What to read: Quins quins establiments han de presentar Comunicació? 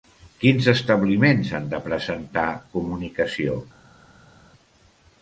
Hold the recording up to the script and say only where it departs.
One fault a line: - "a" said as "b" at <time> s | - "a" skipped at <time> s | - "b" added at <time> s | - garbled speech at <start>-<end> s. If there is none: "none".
- "quins" skipped at 0.7 s